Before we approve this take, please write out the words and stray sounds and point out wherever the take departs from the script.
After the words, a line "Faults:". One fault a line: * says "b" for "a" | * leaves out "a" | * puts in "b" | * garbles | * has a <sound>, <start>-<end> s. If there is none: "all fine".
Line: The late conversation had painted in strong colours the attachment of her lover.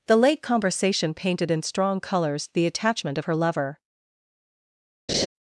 The late conversation painted in strong colours the attachment of her lover.
Faults:
* leaves out "had"
* has a laugh, 5.1-5.3 s